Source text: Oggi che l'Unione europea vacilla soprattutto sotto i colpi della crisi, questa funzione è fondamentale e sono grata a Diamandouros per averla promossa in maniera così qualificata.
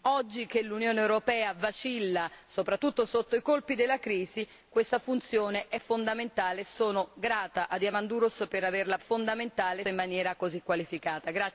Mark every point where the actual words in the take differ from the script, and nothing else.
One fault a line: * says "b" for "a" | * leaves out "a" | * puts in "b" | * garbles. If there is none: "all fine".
* says "fondamentale" for "promossa"